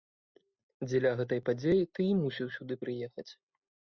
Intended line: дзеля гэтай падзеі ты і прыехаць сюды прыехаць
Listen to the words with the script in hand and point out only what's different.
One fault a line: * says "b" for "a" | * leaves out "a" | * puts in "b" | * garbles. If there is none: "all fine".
* says "мусіў" for "прыехаць"